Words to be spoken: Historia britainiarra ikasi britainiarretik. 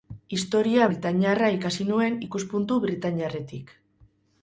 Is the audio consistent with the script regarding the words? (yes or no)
no